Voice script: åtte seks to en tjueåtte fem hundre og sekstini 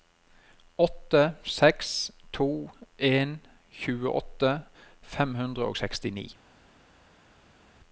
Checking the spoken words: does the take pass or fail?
pass